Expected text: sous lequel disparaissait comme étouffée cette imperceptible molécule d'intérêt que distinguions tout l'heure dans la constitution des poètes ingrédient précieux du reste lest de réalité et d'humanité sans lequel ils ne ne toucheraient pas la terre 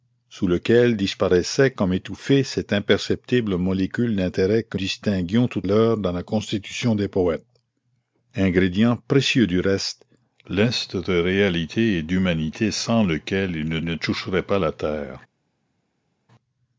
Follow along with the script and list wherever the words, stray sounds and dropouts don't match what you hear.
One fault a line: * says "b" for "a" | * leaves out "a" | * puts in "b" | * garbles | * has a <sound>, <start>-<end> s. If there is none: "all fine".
all fine